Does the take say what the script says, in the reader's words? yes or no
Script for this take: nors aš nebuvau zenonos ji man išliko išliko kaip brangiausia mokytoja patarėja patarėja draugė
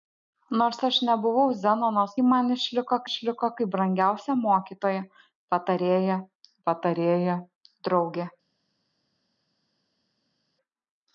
yes